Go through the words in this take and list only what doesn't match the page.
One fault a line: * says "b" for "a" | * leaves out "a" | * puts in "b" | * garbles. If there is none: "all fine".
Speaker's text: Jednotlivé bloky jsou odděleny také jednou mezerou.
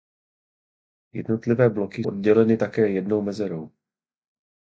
* leaves out "jsou"